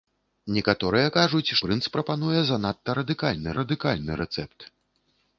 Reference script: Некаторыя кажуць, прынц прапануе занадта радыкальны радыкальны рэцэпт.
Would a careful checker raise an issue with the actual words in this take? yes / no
no